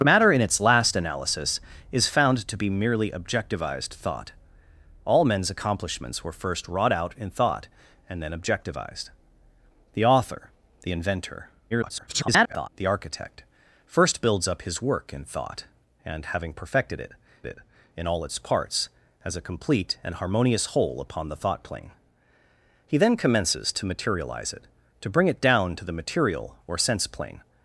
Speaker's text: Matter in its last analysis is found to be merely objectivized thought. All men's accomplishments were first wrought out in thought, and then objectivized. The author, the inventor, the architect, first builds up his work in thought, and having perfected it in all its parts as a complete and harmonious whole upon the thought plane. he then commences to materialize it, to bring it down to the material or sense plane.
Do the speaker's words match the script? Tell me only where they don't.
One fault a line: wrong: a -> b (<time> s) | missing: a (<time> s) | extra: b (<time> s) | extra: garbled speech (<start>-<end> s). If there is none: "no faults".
extra: garbled speech (11.7-12.7 s)
extra: it (17.5 s)